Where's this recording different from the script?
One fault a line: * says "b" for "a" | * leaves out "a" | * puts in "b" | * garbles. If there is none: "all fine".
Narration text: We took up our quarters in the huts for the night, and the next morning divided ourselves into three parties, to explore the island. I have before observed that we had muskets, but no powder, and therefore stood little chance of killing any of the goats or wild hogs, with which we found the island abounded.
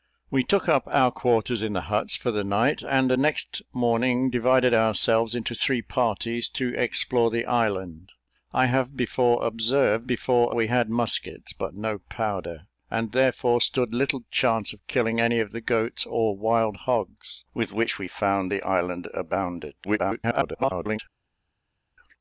* says "before" for "that"
* garbles